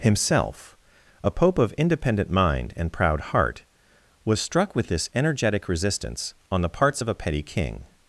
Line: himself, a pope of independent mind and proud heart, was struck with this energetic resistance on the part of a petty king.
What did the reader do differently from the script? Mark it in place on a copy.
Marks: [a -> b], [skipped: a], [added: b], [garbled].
himself, a pope of independent mind and proud heart, was struck with this energetic resistance on the [part -> parts] of a petty king.